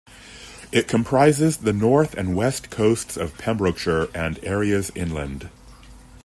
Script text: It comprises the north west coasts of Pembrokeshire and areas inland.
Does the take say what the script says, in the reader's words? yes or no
no